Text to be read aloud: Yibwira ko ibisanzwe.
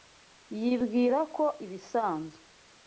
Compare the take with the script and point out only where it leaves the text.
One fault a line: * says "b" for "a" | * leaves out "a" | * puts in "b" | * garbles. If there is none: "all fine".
all fine